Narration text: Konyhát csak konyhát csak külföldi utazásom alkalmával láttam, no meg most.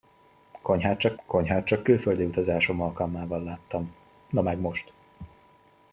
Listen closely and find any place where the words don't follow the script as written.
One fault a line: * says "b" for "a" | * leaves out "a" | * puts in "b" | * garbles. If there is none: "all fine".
all fine